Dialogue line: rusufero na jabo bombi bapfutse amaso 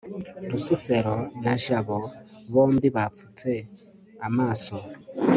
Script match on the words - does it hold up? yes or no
yes